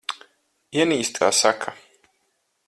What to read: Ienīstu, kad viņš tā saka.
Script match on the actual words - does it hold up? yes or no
no